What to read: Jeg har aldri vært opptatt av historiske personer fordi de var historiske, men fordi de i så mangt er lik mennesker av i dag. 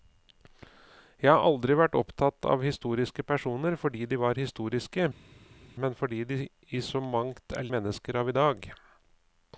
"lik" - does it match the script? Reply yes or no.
no